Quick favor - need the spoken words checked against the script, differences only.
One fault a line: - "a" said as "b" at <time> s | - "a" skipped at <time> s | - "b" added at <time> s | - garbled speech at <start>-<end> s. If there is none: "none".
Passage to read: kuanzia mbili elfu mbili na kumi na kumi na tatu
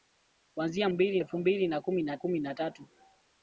none